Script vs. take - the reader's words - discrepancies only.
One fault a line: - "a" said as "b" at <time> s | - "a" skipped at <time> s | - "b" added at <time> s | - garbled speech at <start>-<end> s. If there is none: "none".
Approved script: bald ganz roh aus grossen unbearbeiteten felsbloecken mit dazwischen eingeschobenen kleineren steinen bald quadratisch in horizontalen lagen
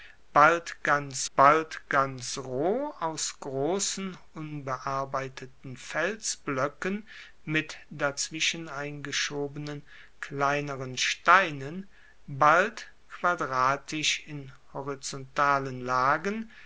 - "bald ganz" added at 1.4 s